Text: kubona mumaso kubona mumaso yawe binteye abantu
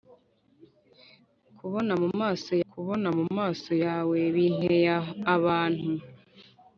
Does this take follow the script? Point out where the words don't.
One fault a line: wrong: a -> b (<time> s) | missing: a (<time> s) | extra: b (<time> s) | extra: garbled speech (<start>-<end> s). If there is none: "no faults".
no faults